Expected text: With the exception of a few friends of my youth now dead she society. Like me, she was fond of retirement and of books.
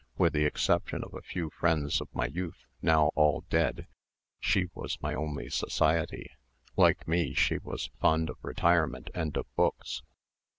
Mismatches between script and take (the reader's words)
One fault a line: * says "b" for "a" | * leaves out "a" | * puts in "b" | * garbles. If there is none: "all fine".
* puts in "all"
* puts in "was my only"